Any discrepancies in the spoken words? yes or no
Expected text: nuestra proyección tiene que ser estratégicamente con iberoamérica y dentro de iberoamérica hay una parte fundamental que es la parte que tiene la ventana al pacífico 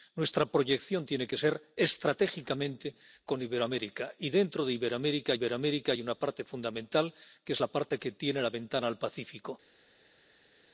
yes